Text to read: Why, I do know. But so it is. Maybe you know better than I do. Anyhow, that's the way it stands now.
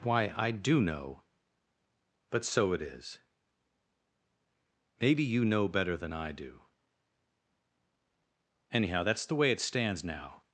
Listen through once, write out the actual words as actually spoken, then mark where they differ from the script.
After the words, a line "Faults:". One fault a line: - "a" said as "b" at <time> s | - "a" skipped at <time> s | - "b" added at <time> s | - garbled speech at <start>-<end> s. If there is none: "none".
Why, I do know. But so it is. Maybe you know better than I do. Anyhow, that's the way it stands now.
Faults:
none